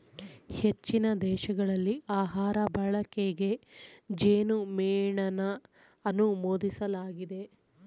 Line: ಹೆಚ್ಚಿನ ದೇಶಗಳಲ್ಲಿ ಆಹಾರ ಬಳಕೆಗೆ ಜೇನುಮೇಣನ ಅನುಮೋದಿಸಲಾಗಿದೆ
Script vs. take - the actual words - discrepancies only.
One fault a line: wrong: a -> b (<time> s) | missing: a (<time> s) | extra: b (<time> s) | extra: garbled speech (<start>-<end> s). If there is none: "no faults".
no faults